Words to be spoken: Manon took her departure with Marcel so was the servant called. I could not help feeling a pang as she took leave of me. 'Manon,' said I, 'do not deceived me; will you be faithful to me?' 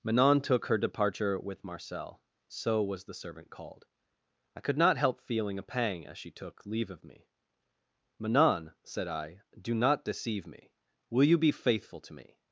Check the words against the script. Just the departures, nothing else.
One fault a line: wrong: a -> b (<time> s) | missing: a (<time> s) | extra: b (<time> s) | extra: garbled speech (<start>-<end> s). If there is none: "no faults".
wrong: deceived -> deceive (10.1 s)